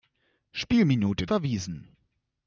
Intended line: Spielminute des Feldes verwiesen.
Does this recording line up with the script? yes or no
no